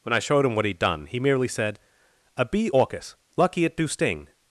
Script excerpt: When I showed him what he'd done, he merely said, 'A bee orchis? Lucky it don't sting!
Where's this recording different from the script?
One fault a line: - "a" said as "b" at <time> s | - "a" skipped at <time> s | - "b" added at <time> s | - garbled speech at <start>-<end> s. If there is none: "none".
- "don't" said as "do" at 3.8 s